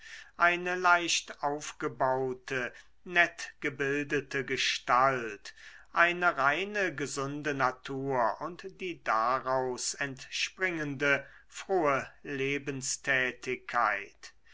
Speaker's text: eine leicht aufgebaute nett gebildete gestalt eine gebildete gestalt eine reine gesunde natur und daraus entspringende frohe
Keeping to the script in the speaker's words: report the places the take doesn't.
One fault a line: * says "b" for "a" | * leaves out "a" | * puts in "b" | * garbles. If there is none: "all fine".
* leaves out "gebildete gestalt eine"
* puts in "die"